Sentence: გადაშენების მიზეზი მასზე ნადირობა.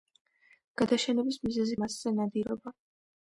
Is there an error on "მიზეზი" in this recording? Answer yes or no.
no